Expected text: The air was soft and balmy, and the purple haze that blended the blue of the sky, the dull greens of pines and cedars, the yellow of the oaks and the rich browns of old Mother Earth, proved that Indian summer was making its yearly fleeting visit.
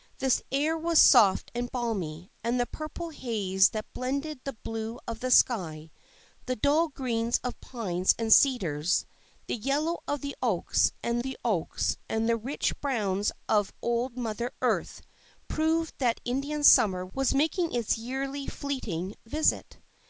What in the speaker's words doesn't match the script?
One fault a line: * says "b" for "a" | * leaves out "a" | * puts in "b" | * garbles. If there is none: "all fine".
* puts in "oaks and the"